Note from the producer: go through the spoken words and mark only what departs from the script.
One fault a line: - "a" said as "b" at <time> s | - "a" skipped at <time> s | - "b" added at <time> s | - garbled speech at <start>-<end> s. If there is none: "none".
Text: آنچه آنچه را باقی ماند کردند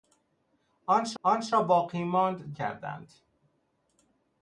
none